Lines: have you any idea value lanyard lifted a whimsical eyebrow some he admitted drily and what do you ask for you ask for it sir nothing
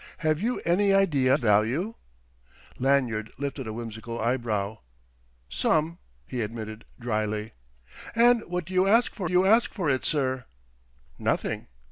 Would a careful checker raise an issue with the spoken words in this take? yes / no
no